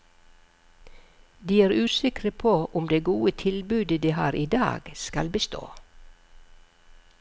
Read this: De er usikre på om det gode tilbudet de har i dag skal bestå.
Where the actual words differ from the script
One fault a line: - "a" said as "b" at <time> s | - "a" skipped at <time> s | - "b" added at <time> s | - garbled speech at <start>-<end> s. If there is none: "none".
none